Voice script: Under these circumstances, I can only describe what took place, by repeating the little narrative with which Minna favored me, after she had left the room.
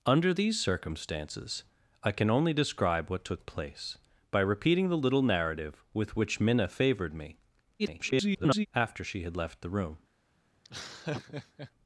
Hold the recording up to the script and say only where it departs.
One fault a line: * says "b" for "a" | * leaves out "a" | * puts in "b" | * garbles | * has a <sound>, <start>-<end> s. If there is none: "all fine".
* garbles
* has a laugh, 10.6-11.7 s